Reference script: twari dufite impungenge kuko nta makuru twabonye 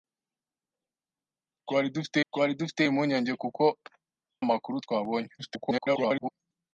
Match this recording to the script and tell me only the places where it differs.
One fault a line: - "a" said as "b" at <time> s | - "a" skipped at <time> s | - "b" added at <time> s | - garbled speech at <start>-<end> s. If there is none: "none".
- "twari dufite" added at 2.3 s
- "nta" skipped at 3.6 s
- garbled speech at 5.4-6.3 s